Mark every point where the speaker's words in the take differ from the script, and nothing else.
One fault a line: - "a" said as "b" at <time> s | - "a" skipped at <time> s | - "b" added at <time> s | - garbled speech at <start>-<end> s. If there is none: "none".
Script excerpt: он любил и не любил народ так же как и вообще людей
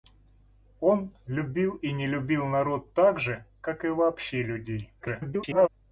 - garbled speech at 5.0-5.7 s